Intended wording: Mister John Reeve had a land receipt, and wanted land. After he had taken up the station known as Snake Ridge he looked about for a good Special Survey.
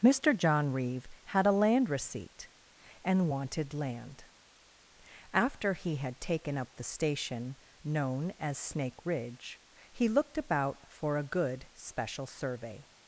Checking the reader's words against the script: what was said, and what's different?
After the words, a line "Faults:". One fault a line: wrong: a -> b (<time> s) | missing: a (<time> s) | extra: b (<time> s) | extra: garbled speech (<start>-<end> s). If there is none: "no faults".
Mister John Reeve had a land receipt, and wanted land. After he had taken up the station known as Snake Ridge he looked about for a good Special Survey.
Faults:
no faults